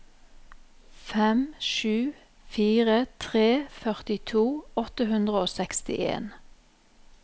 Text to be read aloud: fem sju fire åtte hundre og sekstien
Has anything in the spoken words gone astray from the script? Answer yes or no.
yes